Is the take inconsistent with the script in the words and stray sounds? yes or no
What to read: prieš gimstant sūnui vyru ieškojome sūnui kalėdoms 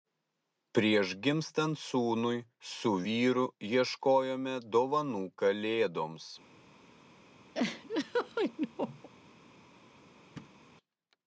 yes